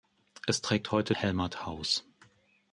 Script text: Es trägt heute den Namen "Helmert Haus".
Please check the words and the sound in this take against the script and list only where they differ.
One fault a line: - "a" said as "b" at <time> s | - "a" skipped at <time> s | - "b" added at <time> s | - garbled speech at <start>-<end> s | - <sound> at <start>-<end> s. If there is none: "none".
- "den Namen" skipped at 1.1 s